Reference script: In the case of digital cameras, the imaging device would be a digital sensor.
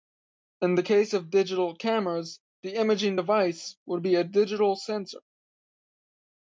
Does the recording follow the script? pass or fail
pass